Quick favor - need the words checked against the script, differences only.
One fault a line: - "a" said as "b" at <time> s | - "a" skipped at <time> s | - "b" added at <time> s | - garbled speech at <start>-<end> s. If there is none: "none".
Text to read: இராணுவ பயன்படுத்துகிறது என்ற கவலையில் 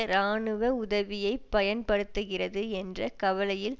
- "உதவியை" added at 0.8 s